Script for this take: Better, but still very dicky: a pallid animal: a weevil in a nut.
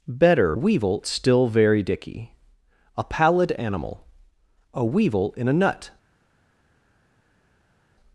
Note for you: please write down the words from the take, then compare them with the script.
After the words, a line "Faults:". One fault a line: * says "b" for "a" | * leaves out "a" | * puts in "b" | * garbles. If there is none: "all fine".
Better, weevil still very dicky: a pallid animal: a weevil in a nut.
Faults:
* says "weevil" for "but"